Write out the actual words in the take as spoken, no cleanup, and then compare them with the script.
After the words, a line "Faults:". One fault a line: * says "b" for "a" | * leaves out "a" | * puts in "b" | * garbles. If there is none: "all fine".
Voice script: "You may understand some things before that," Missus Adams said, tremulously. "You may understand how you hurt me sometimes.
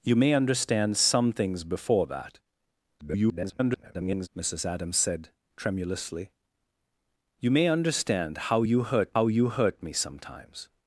"You may understand some things before that," [garbled] Missus Adams said, tremulously. "You may understand how you hurt how you hurt me sometimes.
Faults:
* garbles
* puts in "how you hurt"